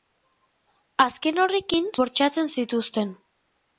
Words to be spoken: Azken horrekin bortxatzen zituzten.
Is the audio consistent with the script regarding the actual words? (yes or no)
yes